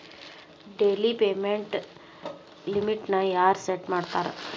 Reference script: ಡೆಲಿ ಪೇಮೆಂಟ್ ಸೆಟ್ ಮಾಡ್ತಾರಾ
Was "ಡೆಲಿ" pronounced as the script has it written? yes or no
yes